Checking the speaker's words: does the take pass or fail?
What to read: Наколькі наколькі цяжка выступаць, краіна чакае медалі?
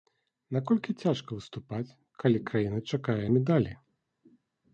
fail